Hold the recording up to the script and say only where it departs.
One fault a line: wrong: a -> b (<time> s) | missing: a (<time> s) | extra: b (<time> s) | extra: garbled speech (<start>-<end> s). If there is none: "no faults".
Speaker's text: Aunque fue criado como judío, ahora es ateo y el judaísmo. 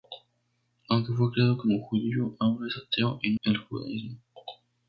no faults